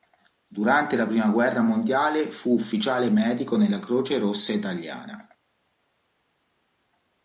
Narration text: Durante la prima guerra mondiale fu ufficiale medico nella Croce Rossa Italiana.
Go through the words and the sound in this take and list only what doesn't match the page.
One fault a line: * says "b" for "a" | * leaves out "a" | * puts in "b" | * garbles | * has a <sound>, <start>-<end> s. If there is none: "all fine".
all fine